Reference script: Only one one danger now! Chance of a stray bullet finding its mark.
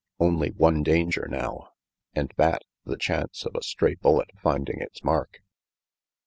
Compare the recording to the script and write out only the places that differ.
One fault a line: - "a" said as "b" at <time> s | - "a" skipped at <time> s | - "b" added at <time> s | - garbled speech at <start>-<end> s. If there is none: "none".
- "one" skipped at 0.8 s
- "And that the" added at 2.1 s